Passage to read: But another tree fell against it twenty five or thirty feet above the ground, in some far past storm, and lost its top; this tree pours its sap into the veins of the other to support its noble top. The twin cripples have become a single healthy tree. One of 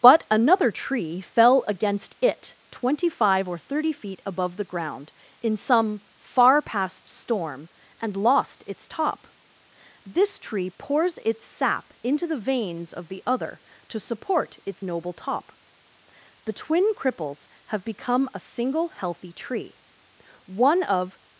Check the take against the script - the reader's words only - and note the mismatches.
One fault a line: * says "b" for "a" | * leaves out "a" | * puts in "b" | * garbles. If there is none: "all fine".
all fine